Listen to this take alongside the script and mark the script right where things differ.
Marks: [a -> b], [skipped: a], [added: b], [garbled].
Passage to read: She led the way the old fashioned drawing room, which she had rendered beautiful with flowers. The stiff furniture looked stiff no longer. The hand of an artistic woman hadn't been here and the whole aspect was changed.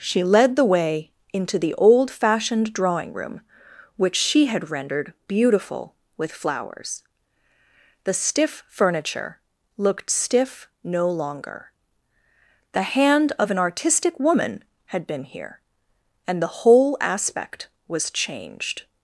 She led the way [added: into] the old fashioned drawing room, which she had rendered beautiful with flowers. The stiff furniture looked stiff no longer. The hand of an artistic woman [hadn't -> had] been here and the whole aspect was changed.